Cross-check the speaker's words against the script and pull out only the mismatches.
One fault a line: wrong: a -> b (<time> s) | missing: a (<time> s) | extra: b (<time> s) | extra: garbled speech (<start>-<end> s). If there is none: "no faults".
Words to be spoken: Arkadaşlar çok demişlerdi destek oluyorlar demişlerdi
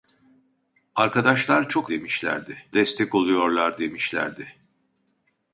no faults